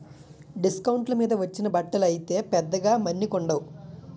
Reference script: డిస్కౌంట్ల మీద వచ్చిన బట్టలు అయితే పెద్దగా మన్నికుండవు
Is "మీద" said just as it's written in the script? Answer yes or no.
yes